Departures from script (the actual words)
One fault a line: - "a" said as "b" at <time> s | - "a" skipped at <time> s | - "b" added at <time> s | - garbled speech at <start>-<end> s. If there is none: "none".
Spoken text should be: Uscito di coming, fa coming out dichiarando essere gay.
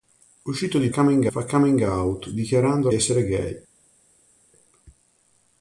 none